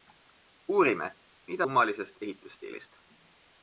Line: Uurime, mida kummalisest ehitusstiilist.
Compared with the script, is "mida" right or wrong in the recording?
right